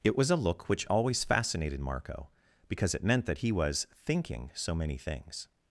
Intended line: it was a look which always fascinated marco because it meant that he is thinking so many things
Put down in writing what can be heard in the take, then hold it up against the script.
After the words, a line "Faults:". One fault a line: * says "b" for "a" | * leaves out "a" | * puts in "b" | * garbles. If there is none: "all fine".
it was a look which always fascinated marco because it meant that he was thinking so many things
Faults:
* says "was" for "is"